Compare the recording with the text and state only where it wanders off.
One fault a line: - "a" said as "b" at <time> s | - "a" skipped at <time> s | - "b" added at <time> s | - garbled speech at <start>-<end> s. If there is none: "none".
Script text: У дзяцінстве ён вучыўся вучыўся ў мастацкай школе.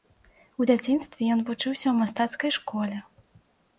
- "вучыўся" skipped at 1.8 s